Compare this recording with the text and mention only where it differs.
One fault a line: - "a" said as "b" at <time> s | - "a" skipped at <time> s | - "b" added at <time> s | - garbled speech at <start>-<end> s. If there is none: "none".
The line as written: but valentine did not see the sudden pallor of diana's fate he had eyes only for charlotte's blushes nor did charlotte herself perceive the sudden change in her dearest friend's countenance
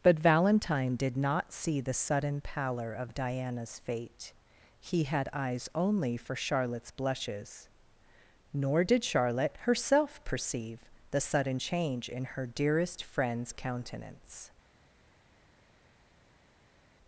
none